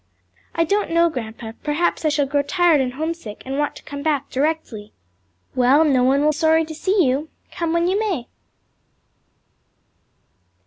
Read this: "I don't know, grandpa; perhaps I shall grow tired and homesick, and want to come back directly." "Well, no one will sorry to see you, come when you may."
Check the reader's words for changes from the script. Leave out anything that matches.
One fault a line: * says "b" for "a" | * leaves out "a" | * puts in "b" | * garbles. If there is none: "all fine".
all fine